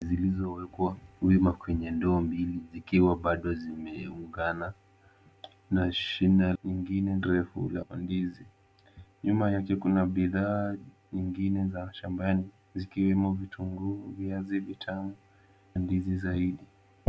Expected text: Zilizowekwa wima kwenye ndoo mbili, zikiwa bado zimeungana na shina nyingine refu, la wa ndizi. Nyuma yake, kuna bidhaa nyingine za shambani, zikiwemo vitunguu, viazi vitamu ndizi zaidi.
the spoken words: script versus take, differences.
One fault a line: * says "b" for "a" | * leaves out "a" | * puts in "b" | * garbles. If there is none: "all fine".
all fine